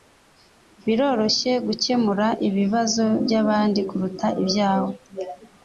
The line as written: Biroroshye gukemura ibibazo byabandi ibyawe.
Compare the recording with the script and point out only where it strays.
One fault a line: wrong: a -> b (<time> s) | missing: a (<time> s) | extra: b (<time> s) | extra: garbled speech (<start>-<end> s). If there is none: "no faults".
extra: kuruta (3.9 s)